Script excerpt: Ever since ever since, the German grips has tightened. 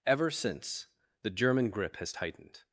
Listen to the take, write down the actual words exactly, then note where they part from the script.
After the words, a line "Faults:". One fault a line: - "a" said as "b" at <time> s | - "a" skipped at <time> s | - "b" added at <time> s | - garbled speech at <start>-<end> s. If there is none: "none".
Ever since, the German grip has tightened.
Faults:
- "ever since" skipped at 0.9 s
- "grips" said as "grip" at 1.7 s